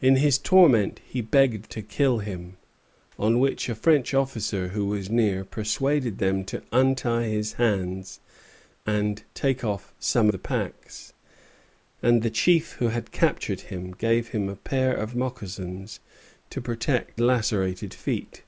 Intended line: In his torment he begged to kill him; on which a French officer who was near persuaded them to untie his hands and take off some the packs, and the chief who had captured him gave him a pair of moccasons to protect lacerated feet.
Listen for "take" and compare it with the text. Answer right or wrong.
right